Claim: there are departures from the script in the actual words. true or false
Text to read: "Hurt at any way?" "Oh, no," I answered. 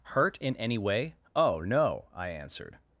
true